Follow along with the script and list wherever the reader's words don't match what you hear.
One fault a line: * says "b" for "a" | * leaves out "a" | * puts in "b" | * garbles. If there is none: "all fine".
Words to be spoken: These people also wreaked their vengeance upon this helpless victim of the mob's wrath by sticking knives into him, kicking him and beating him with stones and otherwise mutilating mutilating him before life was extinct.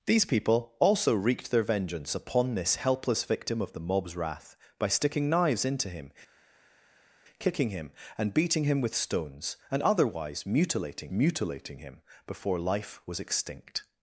all fine